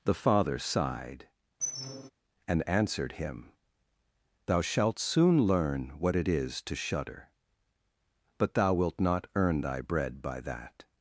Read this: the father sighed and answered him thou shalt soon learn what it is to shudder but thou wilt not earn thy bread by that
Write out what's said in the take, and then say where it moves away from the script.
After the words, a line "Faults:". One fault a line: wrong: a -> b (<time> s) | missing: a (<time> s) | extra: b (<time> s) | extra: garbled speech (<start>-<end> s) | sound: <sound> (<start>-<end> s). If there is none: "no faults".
the father sighed and answered him thou shalt soon learn what it is to shudder but thou wilt not earn thy bread by that
Faults:
sound: squeak (1.6-2.1 s)